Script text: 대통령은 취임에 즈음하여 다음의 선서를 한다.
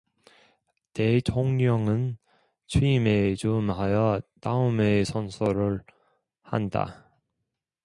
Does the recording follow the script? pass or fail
pass